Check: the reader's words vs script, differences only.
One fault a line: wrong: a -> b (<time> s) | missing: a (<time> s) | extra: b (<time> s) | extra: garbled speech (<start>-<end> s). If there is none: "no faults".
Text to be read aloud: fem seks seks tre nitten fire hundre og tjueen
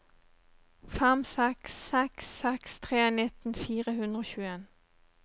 extra: seks (2.4 s)